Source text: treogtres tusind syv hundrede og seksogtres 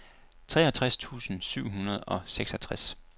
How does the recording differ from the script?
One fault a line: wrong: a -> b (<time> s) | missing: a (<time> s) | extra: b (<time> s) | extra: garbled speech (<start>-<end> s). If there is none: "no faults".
no faults